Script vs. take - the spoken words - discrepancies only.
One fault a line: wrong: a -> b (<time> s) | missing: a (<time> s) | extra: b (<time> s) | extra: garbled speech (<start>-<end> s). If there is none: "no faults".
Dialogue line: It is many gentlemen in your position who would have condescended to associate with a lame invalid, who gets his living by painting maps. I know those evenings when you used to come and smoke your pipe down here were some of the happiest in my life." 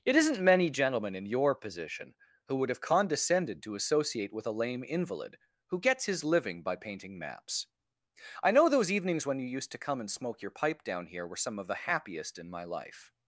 wrong: is -> isn't (0.1 s)